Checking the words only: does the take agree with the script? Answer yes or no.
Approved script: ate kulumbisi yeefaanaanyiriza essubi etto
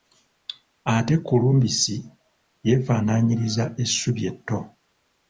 yes